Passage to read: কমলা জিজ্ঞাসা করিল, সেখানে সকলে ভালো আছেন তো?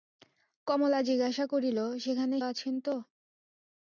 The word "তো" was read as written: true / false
true